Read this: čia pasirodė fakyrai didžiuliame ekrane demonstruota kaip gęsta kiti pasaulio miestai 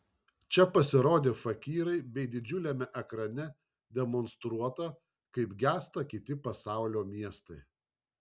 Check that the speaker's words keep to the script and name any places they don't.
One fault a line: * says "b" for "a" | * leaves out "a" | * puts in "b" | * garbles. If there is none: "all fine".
* puts in "bei"